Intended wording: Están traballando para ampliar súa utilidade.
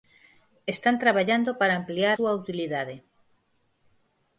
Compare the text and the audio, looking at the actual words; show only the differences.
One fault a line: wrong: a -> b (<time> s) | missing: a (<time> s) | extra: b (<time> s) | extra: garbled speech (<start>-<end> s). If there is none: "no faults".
no faults